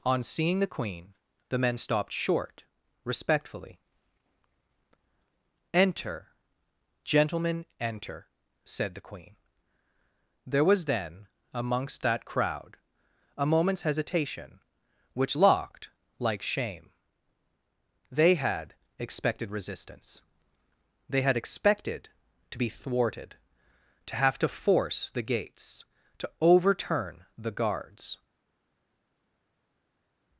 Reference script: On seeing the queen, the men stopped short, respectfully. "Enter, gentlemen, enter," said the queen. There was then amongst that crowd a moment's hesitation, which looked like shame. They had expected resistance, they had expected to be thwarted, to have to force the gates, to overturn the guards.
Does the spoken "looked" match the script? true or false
false